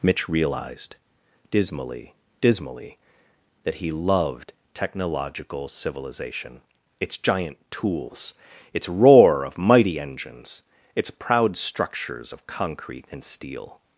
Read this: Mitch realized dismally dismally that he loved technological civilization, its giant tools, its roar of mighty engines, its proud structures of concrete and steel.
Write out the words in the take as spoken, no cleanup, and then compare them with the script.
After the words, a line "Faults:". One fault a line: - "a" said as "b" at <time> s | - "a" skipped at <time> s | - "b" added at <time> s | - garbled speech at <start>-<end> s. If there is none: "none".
Mitch realized dismally dismally that he loved technological civilization, its giant tools, its roar of mighty engines, its proud structures of concrete and steel.
Faults:
none